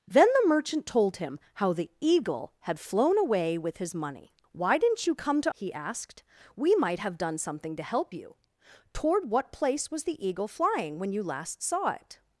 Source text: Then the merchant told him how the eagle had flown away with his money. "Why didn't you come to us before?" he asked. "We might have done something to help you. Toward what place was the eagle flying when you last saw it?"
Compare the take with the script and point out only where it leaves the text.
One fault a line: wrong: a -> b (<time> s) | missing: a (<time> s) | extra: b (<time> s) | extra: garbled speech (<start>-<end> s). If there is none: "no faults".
missing: us before (5.5 s)